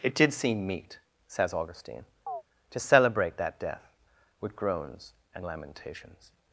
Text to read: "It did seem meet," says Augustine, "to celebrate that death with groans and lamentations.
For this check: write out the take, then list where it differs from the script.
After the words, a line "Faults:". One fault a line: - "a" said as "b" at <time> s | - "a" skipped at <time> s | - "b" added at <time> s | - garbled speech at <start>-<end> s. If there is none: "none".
"It did seem meet," says Augustine, "to celebrate that death with groans and lamentations.
Faults:
none